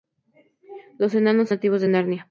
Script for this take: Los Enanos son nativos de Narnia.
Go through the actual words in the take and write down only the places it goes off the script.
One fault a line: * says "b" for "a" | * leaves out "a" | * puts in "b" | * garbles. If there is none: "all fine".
* leaves out "son"